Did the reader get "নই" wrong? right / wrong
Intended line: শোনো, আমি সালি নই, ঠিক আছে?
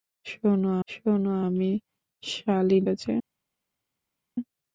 wrong